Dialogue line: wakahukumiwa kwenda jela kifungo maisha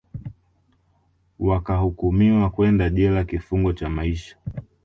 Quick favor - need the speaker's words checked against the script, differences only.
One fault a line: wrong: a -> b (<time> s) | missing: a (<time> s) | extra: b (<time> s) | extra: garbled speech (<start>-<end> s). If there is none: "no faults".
extra: cha (3.7 s)